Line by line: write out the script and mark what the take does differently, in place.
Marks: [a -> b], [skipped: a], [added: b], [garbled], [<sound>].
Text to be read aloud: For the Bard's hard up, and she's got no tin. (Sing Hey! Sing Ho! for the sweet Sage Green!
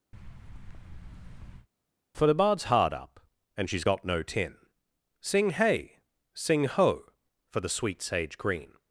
[thud] For the Bard's hard up, and she's got no tin. (Sing Hey! Sing Ho! for the sweet Sage Green!